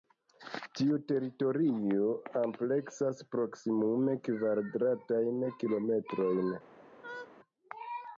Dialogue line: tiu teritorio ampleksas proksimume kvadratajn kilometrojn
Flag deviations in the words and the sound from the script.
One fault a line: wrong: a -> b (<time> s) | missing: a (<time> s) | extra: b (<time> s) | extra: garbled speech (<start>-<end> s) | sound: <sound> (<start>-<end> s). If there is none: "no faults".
sound: laugh (7.0-7.3 s)